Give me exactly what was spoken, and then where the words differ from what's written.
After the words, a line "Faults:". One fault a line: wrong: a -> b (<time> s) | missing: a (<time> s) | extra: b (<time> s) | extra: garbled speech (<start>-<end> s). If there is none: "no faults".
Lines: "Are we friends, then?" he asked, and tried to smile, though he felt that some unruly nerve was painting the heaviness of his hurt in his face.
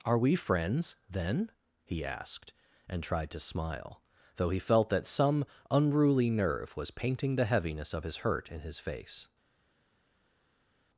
"Are we friends, then?" he asked, and tried to smile, though he felt that some unruly nerve was painting the heaviness of his hurt in his face.
Faults:
no faults